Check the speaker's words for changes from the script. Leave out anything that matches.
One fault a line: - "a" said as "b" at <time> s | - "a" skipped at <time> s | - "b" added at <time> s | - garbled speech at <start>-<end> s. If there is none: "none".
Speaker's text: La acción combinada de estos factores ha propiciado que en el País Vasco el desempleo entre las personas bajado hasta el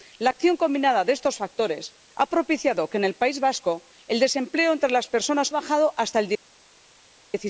none